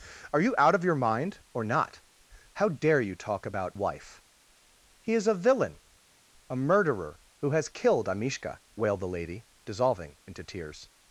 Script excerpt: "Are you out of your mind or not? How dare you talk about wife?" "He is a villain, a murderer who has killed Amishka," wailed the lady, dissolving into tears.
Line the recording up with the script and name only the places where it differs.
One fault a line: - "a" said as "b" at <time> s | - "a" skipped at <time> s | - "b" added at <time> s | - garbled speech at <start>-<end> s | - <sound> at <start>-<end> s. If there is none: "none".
none